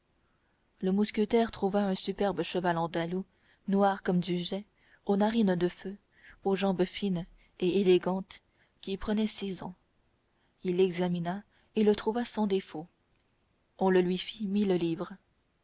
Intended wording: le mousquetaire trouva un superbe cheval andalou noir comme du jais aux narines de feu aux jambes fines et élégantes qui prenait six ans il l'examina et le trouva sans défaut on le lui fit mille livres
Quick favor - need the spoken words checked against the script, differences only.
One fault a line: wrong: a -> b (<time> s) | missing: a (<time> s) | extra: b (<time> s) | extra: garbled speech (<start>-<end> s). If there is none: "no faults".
no faults